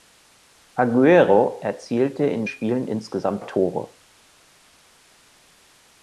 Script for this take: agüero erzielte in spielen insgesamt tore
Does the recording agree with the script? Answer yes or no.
yes